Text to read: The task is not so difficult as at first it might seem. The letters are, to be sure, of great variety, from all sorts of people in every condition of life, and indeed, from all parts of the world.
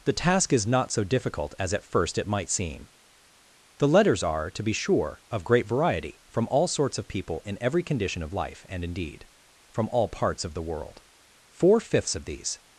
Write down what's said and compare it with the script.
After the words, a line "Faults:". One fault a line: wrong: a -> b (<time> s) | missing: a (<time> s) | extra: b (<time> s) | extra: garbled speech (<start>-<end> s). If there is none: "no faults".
The task is not so difficult as at first it might seem. The letters are, to be sure, of great variety, from all sorts of people in every condition of life, and indeed, from all parts of the world. Four fifths of these
Faults:
extra: Four fifths of these (11.5 s)